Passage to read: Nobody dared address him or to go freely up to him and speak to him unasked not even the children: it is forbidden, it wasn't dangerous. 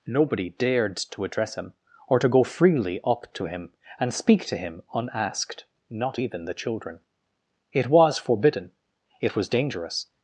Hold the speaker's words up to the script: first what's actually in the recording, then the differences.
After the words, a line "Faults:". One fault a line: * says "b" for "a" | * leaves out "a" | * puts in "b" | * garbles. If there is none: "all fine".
Nobody dared to address him or to go freely up to him and speak to him unasked not even the children: it was forbidden, it was dangerous.
Faults:
* puts in "to"
* says "was" for "is"
* says "was" for "wasn't"